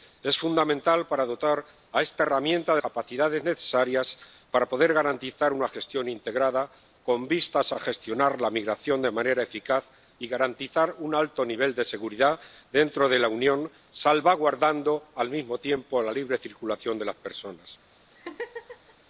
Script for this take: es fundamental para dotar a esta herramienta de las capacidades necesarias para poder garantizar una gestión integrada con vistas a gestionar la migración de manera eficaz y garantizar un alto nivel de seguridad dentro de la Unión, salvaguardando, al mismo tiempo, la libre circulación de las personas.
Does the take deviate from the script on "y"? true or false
false